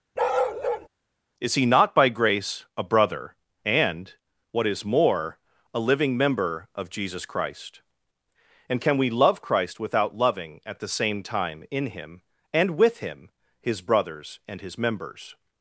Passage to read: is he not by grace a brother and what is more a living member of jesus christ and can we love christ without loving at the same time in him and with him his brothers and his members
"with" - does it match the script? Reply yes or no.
yes